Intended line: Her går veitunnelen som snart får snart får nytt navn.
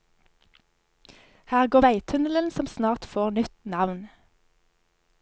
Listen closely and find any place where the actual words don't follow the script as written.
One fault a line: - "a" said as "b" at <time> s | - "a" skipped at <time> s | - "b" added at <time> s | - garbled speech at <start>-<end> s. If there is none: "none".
- "snart får" skipped at 3.3 s